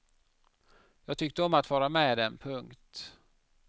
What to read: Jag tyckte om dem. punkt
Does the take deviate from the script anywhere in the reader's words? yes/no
yes